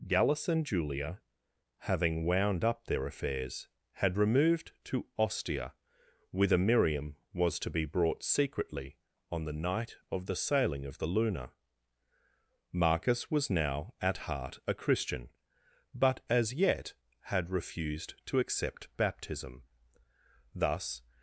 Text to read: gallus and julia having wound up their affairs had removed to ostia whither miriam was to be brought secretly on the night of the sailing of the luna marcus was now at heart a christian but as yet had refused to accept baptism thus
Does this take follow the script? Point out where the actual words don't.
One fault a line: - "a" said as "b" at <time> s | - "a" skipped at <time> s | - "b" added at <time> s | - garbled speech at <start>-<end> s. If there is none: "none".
none